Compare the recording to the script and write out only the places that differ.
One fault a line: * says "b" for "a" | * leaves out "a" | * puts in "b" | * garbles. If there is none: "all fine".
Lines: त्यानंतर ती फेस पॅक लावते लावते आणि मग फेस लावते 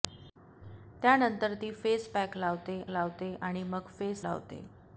all fine